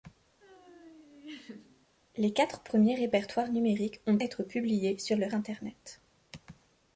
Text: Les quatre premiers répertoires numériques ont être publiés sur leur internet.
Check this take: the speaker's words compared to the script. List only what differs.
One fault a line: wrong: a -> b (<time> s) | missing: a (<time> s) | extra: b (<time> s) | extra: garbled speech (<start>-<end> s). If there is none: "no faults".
no faults